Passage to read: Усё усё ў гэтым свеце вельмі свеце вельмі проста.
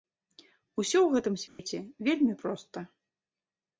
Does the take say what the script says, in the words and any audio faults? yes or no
no